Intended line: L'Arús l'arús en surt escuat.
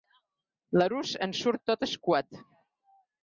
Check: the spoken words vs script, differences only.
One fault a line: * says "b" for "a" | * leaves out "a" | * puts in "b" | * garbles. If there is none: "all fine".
* leaves out "l'arús"
* puts in "tot"